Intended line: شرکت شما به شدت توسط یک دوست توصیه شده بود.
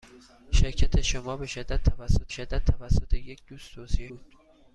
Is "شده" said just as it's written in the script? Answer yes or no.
no